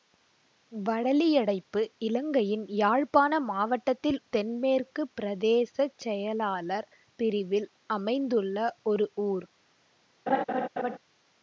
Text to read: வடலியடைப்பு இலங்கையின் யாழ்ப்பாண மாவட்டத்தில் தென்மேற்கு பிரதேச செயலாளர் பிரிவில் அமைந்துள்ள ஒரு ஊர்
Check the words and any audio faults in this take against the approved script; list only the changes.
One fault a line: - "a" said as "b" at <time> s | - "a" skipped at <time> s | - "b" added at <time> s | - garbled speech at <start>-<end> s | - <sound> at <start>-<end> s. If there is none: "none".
- laugh at 10.3-11.0 s